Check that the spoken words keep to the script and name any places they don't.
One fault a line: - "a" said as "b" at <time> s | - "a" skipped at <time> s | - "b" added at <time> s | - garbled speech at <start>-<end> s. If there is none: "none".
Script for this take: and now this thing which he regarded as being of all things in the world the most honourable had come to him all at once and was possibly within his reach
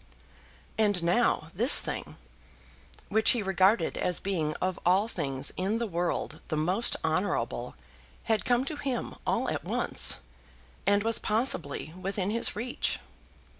none